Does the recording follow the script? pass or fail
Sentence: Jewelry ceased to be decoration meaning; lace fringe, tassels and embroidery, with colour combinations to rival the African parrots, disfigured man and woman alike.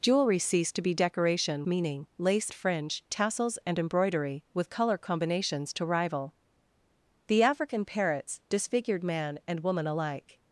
pass